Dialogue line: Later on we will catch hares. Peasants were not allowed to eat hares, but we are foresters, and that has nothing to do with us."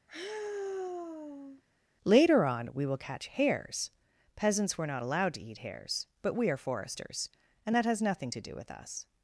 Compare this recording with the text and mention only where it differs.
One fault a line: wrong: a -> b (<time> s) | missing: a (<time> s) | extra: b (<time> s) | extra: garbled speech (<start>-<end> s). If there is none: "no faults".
no faults